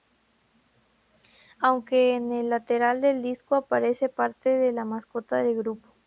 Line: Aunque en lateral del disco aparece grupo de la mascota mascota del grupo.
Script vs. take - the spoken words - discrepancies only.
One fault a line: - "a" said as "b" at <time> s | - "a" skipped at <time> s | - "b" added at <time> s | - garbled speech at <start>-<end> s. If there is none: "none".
- "el" added at 2.3 s
- "grupo" said as "parte" at 4.1 s
- "mascota" skipped at 5.4 s